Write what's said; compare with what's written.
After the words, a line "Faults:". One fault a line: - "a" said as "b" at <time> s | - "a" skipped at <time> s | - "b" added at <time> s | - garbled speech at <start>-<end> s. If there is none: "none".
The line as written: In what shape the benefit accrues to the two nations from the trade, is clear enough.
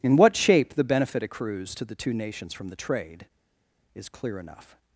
In what shape the benefit accrues to the two nations from the trade, is clear enough.
Faults:
none